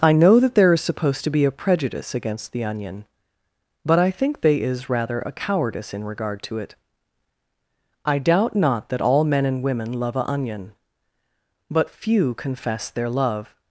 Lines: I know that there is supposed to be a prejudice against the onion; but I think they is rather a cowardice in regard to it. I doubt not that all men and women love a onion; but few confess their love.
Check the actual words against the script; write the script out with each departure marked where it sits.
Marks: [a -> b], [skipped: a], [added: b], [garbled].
I know that there is supposed to be a prejudice against the onion; but I think they is rather a cowardice in regard to it. I doubt not that all men and women love a onion; but few confess their love.